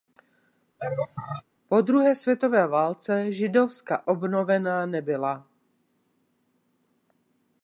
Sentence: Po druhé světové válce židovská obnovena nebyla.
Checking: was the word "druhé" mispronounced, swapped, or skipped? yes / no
no